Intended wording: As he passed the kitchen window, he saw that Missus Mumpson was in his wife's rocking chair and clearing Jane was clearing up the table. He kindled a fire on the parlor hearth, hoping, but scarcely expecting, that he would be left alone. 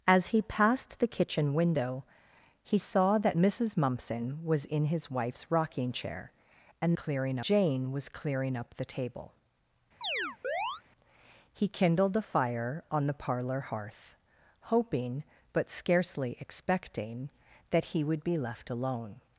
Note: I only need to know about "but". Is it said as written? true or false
true